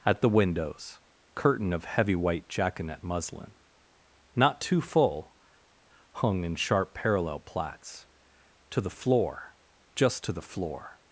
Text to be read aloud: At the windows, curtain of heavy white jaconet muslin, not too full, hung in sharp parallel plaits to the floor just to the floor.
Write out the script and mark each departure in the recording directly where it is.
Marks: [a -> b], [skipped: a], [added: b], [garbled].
At the windows, curtain of heavy white jaconet muslin, not too full, hung in sharp parallel plaits to the floor just to the floor.